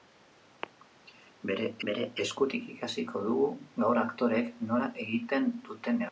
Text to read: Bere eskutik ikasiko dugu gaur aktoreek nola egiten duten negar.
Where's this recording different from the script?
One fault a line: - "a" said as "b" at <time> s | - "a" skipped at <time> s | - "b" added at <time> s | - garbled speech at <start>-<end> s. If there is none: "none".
- "bere" added at 1.9 s